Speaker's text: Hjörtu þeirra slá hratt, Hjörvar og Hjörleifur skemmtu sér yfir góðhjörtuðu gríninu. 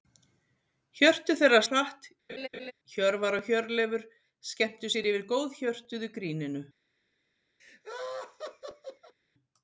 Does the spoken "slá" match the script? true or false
false